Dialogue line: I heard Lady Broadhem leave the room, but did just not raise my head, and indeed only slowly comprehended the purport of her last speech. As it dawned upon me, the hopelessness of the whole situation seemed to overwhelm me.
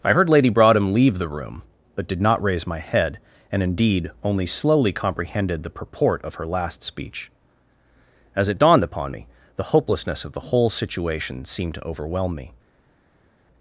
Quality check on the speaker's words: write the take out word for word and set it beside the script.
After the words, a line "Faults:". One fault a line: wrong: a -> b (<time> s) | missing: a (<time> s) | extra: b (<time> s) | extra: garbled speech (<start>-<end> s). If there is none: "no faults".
I heard Lady Broadhem leave the room, but did not raise my head, and indeed only slowly comprehended the purport of her last speech. As it dawned upon me, the hopelessness of the whole situation seemed to overwhelm me.
Faults:
missing: just (2.2 s)